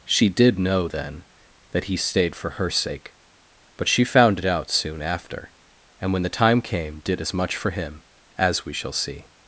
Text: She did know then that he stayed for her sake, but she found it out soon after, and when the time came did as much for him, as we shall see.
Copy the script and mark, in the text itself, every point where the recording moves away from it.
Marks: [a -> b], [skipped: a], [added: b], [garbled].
She did know then that he stayed for her sake, but she found it out soon after, and when the time came did as much for him, as we shall see.